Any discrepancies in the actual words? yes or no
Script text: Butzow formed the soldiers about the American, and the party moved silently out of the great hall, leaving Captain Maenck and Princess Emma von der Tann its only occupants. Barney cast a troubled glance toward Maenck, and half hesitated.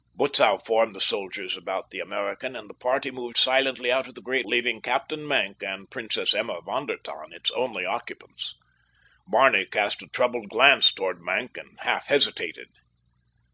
yes